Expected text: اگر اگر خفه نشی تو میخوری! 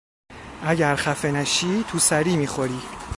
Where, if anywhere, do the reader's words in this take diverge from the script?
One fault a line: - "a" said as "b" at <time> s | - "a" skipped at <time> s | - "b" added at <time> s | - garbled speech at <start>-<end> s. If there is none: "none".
- "اگر" skipped at 0.9 s
- "سری" added at 2.0 s